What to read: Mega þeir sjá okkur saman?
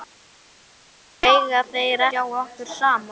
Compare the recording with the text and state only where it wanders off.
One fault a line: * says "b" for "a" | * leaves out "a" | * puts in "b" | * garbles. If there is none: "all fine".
all fine